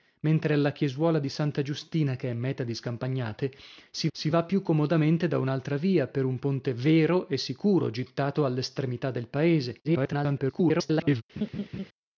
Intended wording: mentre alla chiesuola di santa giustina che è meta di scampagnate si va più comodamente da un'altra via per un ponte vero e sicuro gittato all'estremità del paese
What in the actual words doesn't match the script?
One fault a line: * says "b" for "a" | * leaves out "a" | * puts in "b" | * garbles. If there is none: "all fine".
* puts in "si"
* garbles